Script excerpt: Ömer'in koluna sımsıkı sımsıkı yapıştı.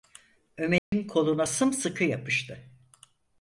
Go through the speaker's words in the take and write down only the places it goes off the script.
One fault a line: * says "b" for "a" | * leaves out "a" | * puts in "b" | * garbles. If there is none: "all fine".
* leaves out "sımsıkı"